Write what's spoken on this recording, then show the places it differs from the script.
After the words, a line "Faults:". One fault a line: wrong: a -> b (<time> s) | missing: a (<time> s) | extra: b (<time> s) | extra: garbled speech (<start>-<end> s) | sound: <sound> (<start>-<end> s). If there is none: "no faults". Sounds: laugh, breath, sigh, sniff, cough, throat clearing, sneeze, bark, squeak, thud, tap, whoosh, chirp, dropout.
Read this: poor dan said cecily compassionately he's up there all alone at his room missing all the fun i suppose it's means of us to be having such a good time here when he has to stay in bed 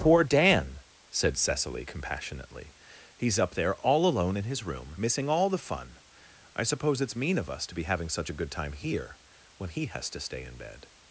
poor dan said cecily compassionately he's up there all alone in his room missing all the fun i suppose it's mean of us to be having such a good time here when he has to stay in bed
Faults:
wrong: at -> in (4.3 s)
wrong: means -> mean (7.2 s)